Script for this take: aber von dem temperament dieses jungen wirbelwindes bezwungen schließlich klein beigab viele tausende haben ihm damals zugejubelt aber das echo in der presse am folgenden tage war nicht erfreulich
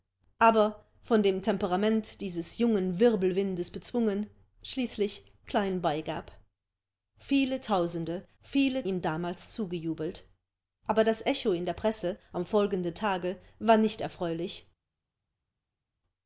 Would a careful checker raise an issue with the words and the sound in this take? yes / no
yes